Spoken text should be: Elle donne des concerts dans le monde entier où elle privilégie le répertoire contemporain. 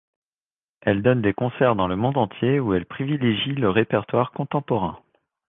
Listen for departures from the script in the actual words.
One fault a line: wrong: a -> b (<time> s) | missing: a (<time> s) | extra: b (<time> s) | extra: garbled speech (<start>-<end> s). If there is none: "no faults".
no faults